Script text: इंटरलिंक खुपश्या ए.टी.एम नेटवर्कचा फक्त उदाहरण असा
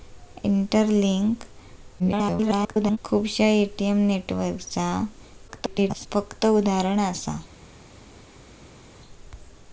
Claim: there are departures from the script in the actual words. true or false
true